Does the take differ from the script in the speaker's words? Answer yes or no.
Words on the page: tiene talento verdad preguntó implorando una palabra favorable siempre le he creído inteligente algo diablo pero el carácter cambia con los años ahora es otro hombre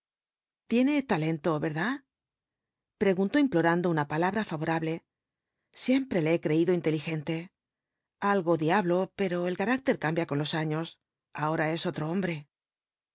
no